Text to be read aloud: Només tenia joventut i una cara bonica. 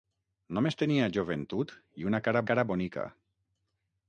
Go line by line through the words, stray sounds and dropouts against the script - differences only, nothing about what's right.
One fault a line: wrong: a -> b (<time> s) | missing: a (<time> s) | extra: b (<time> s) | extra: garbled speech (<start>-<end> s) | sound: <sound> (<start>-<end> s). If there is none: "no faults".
extra: cara (2.5 s)